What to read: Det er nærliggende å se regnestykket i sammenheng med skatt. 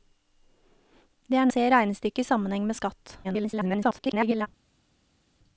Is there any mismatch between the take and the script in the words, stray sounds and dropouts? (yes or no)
yes